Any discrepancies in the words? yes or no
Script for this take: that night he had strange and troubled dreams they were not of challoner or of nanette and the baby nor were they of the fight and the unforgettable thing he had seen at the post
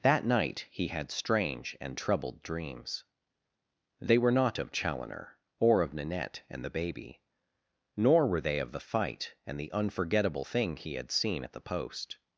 no